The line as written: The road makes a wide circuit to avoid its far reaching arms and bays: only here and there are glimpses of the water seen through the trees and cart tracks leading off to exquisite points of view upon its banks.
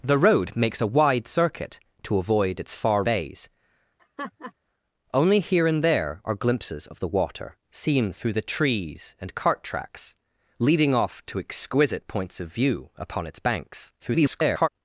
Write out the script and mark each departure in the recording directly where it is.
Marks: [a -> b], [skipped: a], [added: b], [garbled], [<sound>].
The road makes a wide circuit to avoid its far [skipped: reaching arms and] bays: [laugh] only here and there are glimpses of the water seen through the trees and cart tracks leading off to exquisite points of view upon its banks. [garbled]